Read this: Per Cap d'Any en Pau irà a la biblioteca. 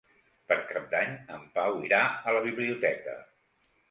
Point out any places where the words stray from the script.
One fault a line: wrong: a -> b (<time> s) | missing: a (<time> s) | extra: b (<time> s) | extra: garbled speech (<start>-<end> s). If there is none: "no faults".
no faults